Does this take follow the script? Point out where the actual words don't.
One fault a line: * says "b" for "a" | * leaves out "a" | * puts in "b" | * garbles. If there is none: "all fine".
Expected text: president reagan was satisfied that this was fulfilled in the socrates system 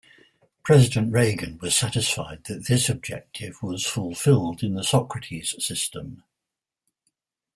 * puts in "objective"